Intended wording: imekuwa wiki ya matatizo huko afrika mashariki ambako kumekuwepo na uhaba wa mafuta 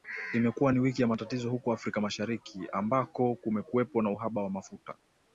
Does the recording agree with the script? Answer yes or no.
no